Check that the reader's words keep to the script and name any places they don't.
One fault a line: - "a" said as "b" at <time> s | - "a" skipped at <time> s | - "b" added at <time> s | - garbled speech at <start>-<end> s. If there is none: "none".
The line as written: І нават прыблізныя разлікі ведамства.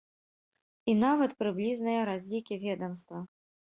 none